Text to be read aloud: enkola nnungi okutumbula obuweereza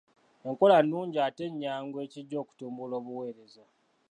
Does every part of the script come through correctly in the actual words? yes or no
no